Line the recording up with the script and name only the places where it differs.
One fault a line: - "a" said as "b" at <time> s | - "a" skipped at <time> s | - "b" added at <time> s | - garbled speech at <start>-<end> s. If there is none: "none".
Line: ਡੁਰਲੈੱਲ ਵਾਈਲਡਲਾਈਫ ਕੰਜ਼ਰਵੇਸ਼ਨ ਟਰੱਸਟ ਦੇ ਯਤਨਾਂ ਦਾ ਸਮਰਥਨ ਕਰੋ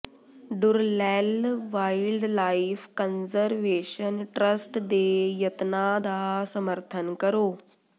none